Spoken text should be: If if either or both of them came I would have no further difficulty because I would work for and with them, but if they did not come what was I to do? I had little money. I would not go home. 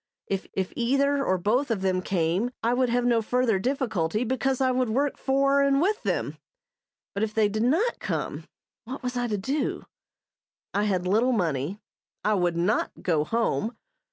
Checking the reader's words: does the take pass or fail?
pass